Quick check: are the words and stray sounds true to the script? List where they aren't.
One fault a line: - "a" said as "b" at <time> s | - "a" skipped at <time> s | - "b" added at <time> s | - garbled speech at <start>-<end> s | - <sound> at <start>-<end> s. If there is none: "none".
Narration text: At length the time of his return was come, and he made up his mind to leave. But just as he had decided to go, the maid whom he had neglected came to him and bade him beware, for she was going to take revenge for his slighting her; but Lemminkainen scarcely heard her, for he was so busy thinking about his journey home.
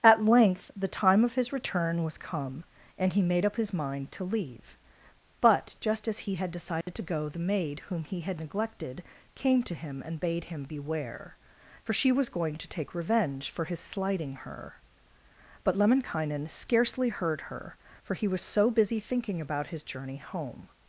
- dropout at 6.8-6.9 s